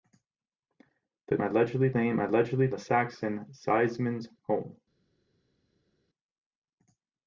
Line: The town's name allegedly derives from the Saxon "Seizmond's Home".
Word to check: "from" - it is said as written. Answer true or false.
false